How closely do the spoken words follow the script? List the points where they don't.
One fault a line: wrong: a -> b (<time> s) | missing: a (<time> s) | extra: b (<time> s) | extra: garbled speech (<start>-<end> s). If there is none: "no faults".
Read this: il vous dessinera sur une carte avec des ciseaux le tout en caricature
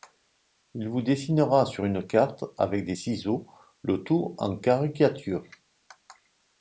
no faults